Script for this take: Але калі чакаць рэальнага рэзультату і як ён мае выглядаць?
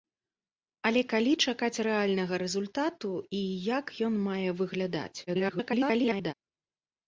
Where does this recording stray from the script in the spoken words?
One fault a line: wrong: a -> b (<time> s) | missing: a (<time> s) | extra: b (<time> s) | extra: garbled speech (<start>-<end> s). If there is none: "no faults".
extra: garbled speech (5.3-6.3 s)